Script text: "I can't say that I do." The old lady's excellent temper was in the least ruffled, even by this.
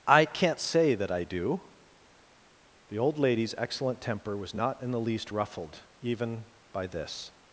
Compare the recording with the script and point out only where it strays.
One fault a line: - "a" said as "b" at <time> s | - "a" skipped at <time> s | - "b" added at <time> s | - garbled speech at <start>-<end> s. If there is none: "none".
- "not" added at 4.5 s